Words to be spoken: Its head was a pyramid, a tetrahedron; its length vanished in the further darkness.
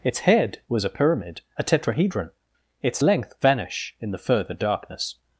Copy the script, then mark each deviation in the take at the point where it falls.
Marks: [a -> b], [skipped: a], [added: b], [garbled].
Its head was a pyramid, a tetrahedron; its length [vanished -> vanish] in the further darkness.